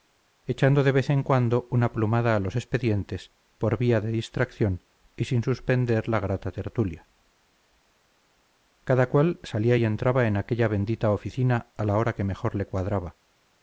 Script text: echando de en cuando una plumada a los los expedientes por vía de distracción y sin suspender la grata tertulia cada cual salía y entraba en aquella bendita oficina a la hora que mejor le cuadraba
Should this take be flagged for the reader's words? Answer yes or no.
yes